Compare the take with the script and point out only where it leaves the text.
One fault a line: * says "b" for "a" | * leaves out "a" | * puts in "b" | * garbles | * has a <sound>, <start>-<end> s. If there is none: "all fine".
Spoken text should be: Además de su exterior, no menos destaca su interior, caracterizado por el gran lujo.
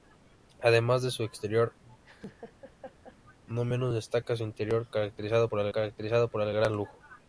* has a laugh, 2.0-3.2 s
* puts in "caracterizado por el"